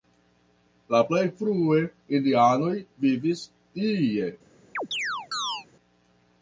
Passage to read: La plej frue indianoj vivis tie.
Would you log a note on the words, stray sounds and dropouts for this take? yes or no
yes